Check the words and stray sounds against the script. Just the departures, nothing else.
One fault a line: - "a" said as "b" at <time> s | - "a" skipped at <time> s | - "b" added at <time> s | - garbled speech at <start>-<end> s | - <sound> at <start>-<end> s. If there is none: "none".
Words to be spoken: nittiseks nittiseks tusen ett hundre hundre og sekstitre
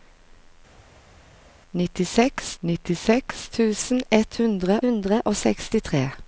none